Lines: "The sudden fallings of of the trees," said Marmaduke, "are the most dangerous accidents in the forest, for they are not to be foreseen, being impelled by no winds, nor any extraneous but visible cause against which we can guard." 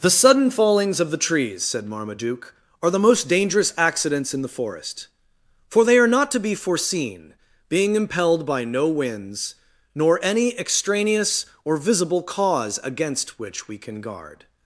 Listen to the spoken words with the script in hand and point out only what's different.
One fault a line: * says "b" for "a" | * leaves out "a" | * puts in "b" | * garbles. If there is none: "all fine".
* leaves out "of"
* says "or" for "but"